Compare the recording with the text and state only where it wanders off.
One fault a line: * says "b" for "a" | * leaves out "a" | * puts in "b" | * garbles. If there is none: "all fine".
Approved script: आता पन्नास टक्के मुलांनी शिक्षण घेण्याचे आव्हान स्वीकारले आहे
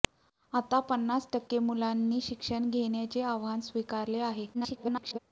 * garbles